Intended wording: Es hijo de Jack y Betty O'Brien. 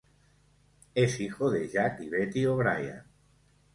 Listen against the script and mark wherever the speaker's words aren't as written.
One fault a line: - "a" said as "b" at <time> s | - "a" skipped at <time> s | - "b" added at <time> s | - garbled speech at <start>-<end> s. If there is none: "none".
none